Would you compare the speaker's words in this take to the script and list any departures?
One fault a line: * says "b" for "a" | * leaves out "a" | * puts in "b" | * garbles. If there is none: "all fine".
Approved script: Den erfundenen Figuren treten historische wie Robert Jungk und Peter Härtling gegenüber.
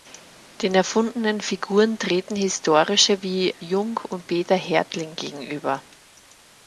* leaves out "Robert"